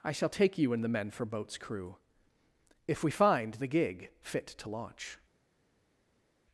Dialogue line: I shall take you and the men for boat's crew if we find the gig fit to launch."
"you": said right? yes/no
yes